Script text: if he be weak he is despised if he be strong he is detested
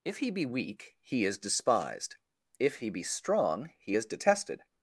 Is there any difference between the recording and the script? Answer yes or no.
no